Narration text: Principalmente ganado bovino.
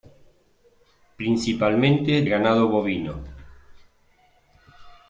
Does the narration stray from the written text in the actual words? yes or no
no